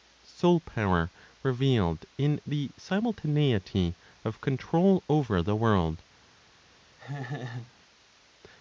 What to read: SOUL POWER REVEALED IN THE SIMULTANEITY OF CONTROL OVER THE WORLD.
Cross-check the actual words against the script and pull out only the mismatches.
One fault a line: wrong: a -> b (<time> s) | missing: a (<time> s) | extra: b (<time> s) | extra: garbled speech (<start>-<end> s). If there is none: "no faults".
no faults